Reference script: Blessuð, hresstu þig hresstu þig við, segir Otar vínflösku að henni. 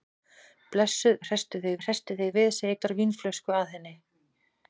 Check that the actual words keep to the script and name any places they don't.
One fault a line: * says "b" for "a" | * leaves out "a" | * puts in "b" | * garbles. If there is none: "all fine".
all fine